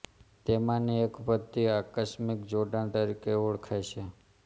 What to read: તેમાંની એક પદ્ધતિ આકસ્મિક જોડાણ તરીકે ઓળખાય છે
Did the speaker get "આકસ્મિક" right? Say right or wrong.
right